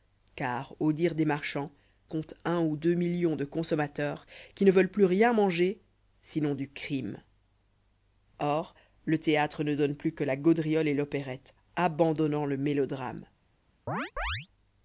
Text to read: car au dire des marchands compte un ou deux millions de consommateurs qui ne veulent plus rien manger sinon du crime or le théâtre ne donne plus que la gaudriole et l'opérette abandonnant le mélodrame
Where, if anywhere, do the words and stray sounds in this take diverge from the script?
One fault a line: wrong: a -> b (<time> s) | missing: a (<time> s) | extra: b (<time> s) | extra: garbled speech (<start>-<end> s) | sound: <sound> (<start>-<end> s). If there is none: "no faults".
sound: chirp (13.9-14.5 s)